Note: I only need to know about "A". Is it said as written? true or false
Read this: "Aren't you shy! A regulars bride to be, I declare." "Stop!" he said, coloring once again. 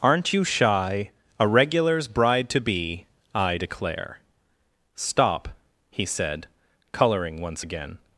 true